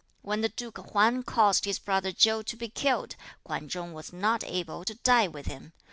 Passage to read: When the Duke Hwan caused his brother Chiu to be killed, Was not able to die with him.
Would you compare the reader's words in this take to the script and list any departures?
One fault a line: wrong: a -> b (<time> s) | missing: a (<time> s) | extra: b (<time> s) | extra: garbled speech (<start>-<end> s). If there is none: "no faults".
extra: Kwan Chung (3.4 s)